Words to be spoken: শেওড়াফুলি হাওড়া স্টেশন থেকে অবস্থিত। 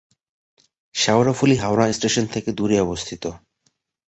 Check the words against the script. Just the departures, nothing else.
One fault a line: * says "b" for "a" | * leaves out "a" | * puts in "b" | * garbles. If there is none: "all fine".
* puts in "দূরে"